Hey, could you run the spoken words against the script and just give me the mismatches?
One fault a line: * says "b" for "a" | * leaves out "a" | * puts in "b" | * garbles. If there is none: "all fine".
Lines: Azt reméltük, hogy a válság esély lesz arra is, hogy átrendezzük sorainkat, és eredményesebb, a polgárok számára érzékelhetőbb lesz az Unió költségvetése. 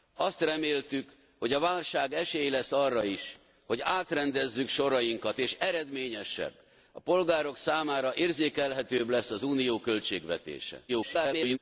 * garbles